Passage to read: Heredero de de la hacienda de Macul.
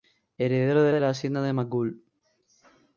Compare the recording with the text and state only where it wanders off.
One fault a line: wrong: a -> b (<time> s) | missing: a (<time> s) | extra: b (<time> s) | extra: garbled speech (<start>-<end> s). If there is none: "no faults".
no faults